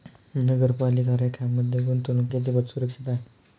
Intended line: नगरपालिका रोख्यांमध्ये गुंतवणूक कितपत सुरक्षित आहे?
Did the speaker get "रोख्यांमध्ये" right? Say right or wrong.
right